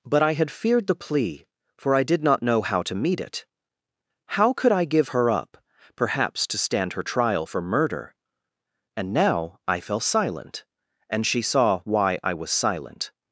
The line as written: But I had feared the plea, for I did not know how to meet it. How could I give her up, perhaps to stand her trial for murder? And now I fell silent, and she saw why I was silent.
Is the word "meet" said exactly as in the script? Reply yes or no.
yes